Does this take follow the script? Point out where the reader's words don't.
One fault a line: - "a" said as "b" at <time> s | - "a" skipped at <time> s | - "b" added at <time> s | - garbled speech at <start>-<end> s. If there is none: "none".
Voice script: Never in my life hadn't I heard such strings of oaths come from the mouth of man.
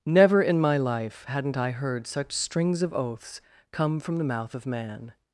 none